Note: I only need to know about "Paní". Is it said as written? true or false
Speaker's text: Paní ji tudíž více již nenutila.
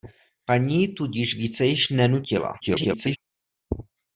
true